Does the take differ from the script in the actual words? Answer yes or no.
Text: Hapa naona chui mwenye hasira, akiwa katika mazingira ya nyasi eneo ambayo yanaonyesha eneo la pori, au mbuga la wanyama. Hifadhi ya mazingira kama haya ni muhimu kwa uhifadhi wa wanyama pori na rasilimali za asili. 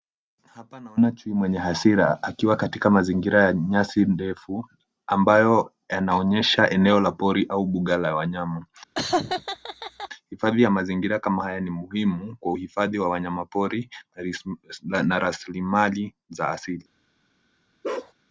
yes